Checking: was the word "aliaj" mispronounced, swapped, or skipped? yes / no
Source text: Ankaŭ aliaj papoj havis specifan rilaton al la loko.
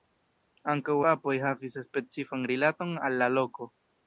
yes